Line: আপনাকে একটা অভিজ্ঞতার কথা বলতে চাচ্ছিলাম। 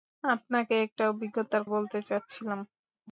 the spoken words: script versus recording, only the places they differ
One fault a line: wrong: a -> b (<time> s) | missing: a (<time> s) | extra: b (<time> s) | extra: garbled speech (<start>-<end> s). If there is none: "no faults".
missing: কথা (1.6 s)